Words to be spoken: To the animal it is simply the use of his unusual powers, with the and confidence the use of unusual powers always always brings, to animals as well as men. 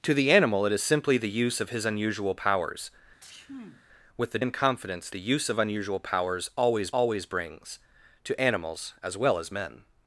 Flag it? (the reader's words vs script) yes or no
no